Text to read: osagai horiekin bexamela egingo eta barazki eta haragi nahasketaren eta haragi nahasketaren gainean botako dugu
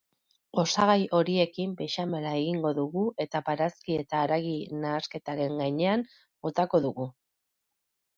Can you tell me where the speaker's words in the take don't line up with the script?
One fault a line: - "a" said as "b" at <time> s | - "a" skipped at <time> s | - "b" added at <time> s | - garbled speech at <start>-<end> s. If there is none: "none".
- "dugu" added at 2.8 s
- "eta haragi nahasketaren" skipped at 5.6 s